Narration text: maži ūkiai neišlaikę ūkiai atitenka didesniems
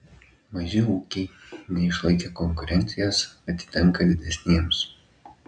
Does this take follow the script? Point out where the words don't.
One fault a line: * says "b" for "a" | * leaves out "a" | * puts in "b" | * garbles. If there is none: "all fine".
* says "konkurencijos" for "ūkiai"